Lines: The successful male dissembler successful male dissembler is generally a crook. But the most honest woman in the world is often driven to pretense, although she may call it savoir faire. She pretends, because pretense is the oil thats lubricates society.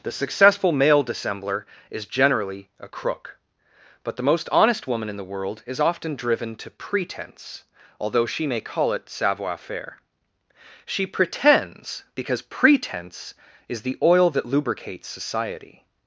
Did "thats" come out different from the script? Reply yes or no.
yes